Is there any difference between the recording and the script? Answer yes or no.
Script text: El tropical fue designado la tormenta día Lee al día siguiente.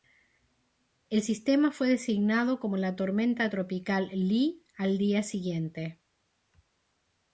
yes